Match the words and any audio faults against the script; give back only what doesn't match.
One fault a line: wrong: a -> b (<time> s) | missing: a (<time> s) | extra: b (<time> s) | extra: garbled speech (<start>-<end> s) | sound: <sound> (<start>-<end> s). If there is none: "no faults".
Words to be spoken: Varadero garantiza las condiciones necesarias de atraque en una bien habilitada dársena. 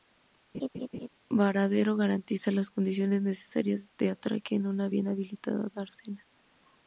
sound: laugh (0.5-1.1 s)